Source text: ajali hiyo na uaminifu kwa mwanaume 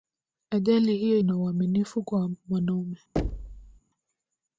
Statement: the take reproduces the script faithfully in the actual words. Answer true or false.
true